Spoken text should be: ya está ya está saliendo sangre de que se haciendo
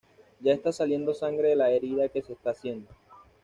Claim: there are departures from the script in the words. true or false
true